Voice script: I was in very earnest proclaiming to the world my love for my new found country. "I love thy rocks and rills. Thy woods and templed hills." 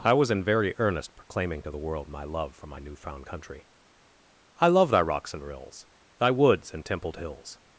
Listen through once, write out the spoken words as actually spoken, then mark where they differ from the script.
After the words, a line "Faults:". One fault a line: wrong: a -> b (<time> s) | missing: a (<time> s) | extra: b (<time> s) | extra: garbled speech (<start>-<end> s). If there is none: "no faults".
I was in very earnest proclaiming to the world my love for my new found country. "I love thy rocks and rills. Thy woods and templed hills."
Faults:
no faults